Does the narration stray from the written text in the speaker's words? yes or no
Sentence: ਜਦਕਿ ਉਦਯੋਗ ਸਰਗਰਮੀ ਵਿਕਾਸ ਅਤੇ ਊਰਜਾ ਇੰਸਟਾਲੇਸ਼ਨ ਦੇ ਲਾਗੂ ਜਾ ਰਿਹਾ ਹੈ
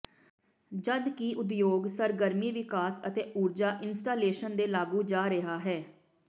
no